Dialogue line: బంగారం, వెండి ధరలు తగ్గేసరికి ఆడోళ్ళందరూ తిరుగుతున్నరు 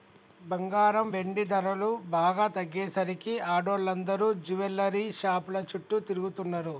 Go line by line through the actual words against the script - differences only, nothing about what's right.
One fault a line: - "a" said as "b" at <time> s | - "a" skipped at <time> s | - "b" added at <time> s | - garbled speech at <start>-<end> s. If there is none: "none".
- "బాగా" added at 2.1 s
- "జువెల్లరీ షాపుల చుట్టూ" added at 4.5 s